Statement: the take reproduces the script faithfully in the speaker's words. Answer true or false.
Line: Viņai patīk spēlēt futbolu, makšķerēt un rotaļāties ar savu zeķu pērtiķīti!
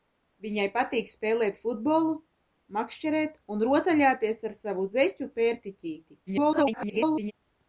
false